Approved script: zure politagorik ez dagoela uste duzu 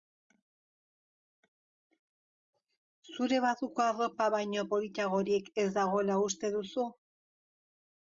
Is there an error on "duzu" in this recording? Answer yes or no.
no